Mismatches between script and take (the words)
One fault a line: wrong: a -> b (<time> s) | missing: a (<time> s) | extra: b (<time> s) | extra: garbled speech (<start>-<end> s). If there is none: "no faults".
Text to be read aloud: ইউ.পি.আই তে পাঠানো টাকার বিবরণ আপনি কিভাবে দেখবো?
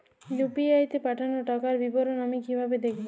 wrong: আপনি -> আমি (2.2 s)